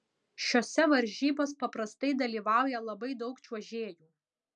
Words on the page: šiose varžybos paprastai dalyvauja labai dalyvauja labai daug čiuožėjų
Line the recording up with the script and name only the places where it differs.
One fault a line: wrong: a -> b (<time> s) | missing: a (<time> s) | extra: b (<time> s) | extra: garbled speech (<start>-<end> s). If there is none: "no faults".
missing: dalyvauja labai (3.1 s)